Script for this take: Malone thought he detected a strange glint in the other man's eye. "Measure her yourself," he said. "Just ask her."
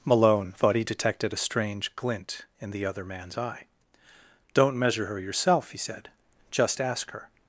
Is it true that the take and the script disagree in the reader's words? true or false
true